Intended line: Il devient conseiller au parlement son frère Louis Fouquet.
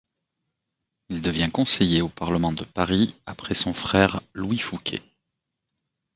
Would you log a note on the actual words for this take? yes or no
yes